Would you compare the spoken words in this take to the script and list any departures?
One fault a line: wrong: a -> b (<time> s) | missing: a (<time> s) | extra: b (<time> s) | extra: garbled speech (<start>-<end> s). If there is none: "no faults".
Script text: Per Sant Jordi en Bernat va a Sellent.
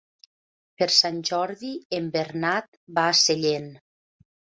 no faults